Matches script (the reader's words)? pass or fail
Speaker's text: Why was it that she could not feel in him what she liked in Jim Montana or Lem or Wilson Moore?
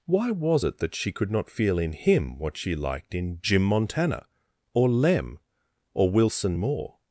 pass